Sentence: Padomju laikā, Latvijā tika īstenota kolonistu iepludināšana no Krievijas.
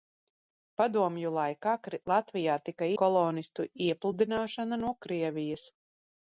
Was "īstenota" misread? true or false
true